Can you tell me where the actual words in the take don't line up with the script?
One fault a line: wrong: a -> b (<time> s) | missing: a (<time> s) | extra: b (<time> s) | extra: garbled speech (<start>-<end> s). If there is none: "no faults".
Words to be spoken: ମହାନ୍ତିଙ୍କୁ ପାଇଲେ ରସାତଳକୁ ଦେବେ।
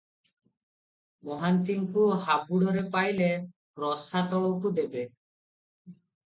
extra: ହାବୁଡ଼ରେ (2.2 s)